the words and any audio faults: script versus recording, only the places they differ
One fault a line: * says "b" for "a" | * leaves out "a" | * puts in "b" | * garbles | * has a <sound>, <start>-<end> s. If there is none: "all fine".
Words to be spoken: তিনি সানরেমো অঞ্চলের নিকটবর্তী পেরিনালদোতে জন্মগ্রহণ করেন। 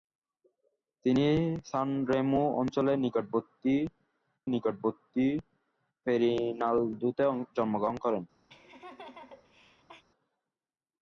* puts in "নিকটবর্তী"
* has a laugh, 8.5-10.0 s